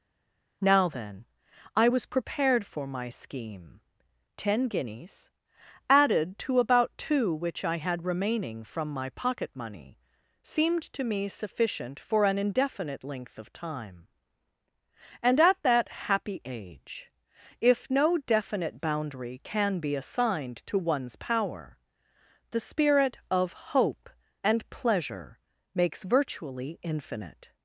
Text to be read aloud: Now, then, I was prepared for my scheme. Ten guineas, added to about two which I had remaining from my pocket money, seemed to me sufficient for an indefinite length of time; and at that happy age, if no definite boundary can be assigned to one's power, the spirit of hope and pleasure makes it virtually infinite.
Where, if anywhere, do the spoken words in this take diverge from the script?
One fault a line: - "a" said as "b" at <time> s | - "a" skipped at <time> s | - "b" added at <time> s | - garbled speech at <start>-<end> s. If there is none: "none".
- "it" skipped at 26.0 s